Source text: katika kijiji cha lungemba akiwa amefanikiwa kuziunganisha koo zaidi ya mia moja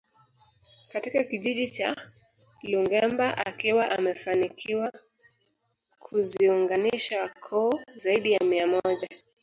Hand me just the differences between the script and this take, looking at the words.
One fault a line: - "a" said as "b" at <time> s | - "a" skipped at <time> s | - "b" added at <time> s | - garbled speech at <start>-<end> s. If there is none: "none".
none